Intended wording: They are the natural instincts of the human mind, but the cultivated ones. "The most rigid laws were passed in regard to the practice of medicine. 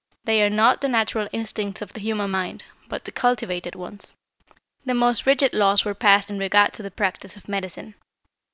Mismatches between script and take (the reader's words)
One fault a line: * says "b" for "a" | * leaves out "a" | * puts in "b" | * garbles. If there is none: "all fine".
* puts in "not"